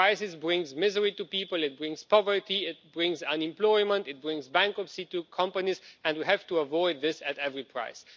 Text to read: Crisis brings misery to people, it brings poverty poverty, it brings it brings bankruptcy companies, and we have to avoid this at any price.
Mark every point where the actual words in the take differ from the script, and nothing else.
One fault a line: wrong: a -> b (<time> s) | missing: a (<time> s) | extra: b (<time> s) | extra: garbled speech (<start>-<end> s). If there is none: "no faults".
missing: poverty (2.6 s)
extra: unemployment (3.2 s)
extra: to (5.0 s)